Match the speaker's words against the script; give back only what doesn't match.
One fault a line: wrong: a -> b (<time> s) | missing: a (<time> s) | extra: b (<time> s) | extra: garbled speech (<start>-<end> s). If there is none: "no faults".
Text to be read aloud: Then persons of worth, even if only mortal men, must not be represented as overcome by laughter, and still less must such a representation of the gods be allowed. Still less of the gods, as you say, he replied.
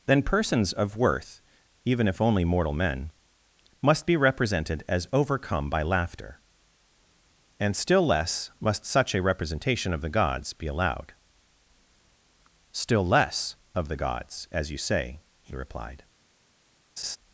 missing: not (4.0 s)